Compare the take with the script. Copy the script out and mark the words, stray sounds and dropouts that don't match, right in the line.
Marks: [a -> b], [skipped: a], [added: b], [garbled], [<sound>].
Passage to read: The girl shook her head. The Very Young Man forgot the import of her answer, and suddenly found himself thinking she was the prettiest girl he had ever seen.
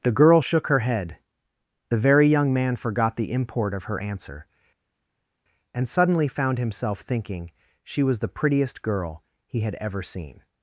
The girl shook her head. The Very Young Man forgot the import of her answer, and suddenly found himself thinking she was the prettiest girl he had ever seen.